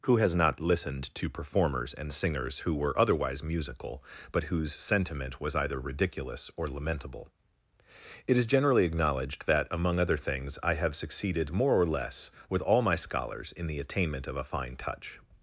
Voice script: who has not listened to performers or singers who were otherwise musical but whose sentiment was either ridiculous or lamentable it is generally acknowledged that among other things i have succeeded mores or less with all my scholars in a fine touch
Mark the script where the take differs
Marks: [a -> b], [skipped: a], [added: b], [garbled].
who has not listened to performers [or -> and] singers who were otherwise musical but whose sentiment was either ridiculous or lamentable it is generally acknowledged that among other things i have succeeded [mores -> more] or less with all my scholars in [added: the attainment of] a fine touch